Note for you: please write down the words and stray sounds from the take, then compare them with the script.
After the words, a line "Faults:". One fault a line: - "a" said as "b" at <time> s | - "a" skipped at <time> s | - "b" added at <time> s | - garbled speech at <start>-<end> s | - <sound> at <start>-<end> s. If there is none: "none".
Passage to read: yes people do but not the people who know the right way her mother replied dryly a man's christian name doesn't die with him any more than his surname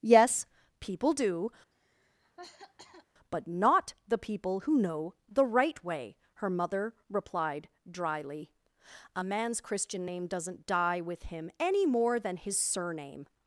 yes people do but not the people who know the right way her mother replied dryly a man's christian name doesn't die with him any more than his surname
Faults:
- cough at 1.7-3.1 s